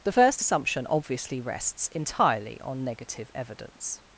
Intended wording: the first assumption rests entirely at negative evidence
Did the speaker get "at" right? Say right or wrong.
wrong